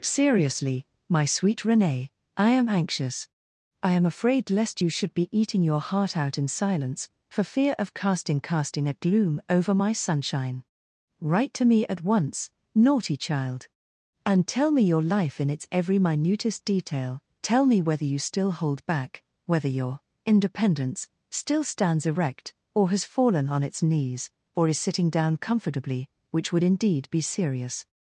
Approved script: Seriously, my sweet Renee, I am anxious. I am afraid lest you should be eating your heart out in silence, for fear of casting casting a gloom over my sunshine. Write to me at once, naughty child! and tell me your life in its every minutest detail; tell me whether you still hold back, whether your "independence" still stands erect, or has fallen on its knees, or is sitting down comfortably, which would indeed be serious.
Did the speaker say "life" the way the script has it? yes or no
yes